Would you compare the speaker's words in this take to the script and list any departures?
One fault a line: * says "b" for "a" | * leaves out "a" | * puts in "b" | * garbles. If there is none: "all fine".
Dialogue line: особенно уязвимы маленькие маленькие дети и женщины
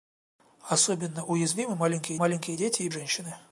all fine